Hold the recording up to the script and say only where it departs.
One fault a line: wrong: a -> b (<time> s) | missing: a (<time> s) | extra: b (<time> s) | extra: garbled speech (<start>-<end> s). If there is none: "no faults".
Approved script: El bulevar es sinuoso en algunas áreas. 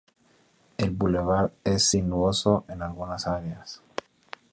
no faults